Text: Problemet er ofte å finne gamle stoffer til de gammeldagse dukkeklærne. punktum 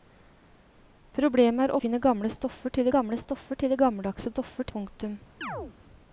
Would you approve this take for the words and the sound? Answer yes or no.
no